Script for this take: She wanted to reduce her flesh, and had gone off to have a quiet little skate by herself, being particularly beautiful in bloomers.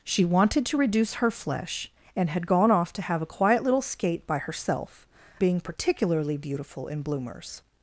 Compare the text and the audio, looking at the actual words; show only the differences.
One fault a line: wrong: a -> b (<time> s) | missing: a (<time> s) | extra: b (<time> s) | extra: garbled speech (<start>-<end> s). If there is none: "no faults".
no faults